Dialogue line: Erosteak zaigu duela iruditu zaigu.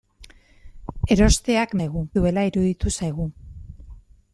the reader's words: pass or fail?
pass